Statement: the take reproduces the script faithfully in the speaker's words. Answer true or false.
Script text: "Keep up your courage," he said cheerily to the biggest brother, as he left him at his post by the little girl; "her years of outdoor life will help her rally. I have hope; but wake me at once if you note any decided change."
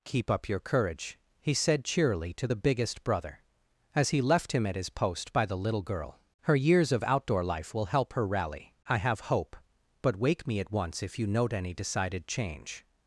true